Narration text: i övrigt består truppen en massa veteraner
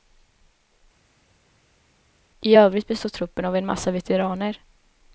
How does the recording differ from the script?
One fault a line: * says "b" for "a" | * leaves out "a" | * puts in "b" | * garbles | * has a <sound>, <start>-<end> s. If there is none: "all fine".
* puts in "av"